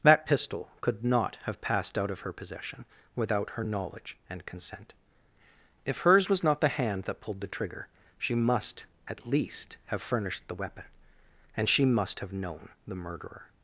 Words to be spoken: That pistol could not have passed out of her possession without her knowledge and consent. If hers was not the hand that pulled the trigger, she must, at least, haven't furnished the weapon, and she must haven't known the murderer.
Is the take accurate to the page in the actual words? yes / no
no